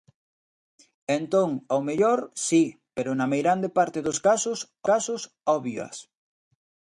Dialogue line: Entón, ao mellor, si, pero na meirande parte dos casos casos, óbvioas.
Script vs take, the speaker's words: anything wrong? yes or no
no